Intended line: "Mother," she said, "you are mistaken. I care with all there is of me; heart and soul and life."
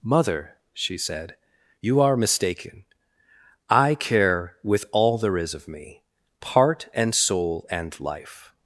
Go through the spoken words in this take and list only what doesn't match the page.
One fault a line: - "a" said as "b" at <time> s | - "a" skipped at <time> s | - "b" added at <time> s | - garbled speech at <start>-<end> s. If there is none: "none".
- "heart" said as "part" at 6.4 s